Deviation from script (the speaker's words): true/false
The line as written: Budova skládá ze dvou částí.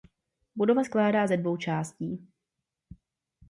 false